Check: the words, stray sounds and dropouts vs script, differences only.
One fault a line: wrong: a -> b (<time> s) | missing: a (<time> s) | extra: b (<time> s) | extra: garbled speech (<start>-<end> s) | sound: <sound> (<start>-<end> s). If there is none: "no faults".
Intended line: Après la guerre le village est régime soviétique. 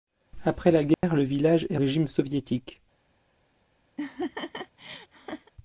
sound: dropout (0.9-1.0 s)
sound: laugh (4.0-5.5 s)